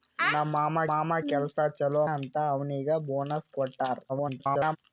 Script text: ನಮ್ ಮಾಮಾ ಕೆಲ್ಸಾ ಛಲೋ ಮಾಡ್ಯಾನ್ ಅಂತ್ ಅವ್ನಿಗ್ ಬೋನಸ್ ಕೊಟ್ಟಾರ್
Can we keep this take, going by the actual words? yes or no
no